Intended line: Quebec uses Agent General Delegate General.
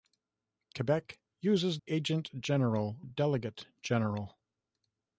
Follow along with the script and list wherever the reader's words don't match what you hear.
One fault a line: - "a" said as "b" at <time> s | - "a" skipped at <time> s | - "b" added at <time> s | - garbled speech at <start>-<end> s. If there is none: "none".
none